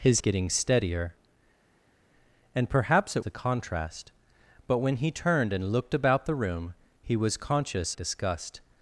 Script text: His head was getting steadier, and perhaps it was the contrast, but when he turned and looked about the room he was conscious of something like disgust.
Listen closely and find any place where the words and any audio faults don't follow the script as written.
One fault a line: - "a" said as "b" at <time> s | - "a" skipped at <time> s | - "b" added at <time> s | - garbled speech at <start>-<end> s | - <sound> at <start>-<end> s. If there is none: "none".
- "head was" skipped at 0.2 s
- "was" skipped at 3.2 s
- "of something like" skipped at 8.0 s